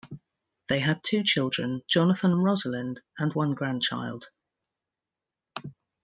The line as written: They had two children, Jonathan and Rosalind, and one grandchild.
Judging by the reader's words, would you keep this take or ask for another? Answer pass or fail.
pass